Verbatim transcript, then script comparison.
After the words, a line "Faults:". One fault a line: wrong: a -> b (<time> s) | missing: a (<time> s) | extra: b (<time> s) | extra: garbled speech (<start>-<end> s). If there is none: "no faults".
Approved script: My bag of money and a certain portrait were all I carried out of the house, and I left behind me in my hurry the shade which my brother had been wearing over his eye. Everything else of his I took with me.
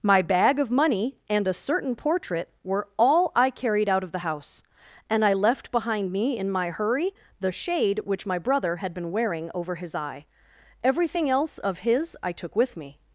My bag of money and a certain portrait were all I carried out of the house, and I left behind me in my hurry the shade which my brother had been wearing over his eye. Everything else of his I took with me.
Faults:
no faults